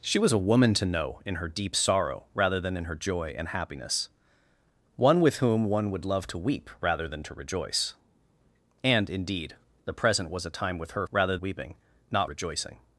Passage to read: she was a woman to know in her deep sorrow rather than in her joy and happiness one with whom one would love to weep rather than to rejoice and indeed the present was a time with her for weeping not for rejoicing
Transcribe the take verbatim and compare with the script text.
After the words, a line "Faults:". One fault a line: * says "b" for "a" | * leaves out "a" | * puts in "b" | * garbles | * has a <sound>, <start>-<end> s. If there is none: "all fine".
she was a woman to know in her deep sorrow rather than in her joy and happiness one with whom one would love to weep rather than to rejoice and indeed the present was a time with her rather weeping not rejoicing
Faults:
* says "rather" for "for"
* leaves out "for"